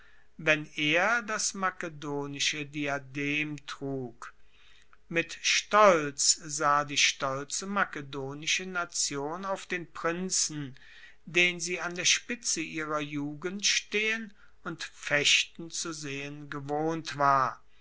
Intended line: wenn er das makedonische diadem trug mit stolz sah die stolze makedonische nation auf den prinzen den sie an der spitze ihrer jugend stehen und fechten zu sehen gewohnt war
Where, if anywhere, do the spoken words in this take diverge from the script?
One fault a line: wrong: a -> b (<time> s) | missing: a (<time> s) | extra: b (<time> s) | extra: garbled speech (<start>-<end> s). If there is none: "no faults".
no faults